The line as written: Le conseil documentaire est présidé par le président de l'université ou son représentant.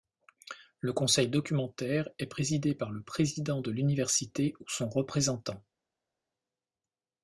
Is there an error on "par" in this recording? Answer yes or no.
no